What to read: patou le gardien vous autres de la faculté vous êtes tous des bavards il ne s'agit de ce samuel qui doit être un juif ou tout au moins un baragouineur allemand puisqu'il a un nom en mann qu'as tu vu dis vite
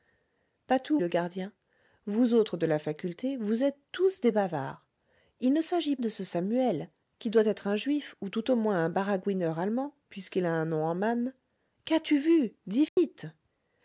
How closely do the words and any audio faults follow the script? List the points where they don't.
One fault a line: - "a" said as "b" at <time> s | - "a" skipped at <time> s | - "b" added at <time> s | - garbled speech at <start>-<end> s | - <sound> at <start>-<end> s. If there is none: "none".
- dropout at 12.9-13.0 s